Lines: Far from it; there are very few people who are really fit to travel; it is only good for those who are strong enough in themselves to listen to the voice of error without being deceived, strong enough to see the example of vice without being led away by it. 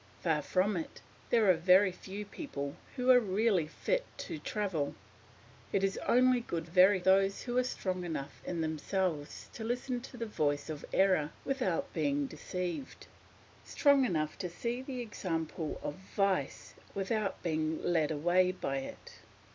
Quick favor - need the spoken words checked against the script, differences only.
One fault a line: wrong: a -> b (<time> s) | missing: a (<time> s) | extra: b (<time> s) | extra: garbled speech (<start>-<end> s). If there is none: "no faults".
wrong: for -> very (6.6 s)